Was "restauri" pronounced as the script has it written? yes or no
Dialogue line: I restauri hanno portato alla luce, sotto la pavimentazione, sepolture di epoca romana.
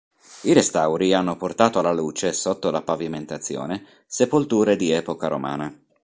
yes